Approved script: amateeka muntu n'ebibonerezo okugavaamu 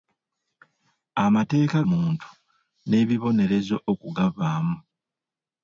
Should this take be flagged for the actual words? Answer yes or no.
no